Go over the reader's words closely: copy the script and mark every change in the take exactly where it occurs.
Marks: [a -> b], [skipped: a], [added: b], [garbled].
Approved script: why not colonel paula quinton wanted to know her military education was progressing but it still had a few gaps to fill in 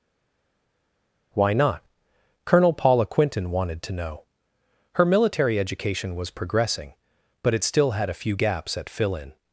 why not colonel paula quinton wanted to know her military education was progressing but it still had a few gaps [to -> at] fill in